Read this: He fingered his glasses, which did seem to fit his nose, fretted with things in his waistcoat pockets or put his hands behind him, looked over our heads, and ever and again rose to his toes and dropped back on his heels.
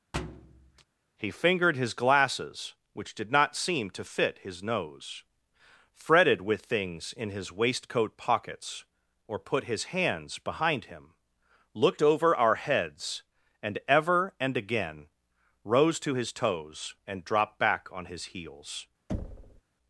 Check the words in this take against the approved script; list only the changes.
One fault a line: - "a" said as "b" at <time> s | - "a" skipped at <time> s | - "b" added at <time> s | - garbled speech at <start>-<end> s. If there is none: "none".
- "not" added at 3.3 s